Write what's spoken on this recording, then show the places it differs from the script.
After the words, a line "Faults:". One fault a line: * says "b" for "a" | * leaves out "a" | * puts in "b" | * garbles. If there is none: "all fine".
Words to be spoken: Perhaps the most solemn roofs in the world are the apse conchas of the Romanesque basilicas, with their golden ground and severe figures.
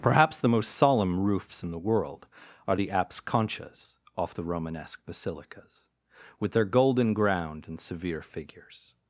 Perhaps the most solemn roofs in the world are the apse conchas off the Romanesque basilicas, with their golden ground and severe figures.
Faults:
* says "off" for "of"